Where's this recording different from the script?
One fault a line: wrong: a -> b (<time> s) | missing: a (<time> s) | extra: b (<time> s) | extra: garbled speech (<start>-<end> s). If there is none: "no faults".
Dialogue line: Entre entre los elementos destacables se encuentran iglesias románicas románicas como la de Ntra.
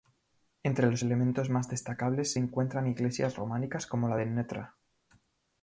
missing: entre (0.9 s)
extra: más (1.5 s)
missing: románicas (3.9 s)